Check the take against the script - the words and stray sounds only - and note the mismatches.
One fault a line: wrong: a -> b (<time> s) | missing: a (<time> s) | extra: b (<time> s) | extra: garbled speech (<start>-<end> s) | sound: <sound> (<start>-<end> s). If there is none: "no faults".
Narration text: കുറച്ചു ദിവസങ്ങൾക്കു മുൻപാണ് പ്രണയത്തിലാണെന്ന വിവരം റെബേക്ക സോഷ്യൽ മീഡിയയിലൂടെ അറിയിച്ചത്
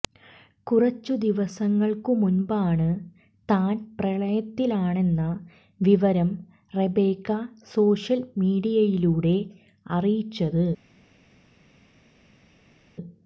extra: താൻ (3.5 s)